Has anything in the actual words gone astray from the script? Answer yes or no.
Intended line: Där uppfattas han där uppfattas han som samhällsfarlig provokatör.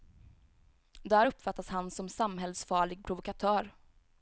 yes